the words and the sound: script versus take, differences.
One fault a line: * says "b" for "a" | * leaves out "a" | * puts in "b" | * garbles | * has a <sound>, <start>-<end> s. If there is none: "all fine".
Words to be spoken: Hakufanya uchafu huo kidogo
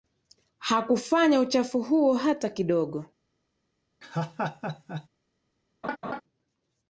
* puts in "hata"
* has a laugh, 4.0-5.1 s
* has a laugh, 5.8-6.2 s